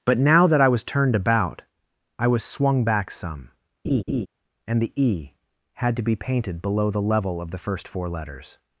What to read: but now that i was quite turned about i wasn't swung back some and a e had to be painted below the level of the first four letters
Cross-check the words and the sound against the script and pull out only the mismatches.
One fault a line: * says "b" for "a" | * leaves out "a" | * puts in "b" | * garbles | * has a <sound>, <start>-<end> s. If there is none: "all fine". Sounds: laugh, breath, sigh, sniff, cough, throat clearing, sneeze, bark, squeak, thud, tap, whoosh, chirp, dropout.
* leaves out "quite"
* says "was" for "wasn't"
* has a laugh, 3.8-4.3 s
* says "the" for "a"